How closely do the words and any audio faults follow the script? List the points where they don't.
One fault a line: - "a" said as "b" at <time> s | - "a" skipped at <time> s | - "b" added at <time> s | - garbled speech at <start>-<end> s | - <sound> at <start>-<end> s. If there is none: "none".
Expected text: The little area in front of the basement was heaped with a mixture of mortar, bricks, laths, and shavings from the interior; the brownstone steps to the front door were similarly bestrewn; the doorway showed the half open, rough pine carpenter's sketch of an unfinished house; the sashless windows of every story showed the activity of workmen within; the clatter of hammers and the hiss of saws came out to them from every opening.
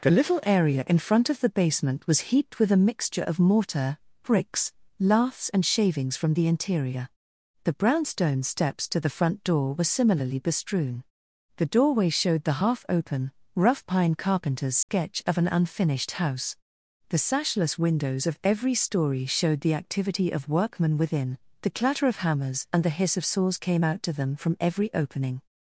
- dropout at 14.8-14.9 s